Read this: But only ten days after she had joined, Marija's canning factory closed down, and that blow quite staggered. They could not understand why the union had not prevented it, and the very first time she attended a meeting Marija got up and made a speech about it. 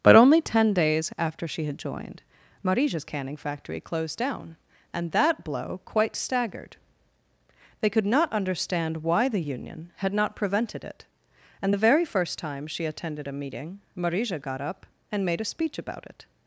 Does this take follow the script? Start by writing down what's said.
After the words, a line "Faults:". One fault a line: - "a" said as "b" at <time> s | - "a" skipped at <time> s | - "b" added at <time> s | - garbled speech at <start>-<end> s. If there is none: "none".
But only ten days after she had joined, Marija's canning factory closed down, and that blow quite staggered. They could not understand why the union had not prevented it, and the very first time she attended a meeting Marija got up and made a speech about it.
Faults:
none